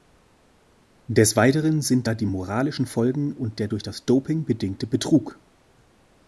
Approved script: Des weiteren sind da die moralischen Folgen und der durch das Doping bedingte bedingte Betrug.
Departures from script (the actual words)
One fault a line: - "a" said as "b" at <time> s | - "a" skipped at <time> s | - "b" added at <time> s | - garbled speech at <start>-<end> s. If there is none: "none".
- "bedingte" skipped at 4.8 s